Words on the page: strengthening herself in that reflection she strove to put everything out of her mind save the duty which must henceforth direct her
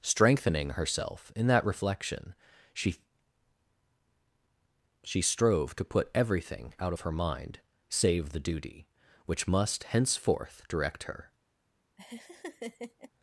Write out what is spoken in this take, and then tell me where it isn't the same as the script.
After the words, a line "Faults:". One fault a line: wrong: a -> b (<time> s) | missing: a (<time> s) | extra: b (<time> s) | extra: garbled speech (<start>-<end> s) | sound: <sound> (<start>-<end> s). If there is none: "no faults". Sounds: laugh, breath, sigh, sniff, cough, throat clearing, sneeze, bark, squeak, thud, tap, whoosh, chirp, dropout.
strengthening herself in that reflection she she strove to put everything out of her mind save the duty which must henceforth direct her
Faults:
extra: she (5.0 s)
sound: laugh (12.0-13.1 s)